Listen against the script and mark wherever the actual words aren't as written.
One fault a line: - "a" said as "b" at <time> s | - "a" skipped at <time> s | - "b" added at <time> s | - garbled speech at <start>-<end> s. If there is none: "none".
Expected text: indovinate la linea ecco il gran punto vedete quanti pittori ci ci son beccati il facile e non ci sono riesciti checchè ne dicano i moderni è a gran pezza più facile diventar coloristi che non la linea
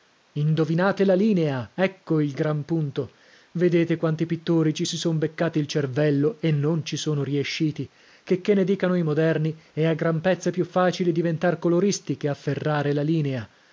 - "ci" said as "si" at 4.8 s
- "facile" said as "cervello" at 5.7 s
- "non" said as "afferrare" at 12.3 s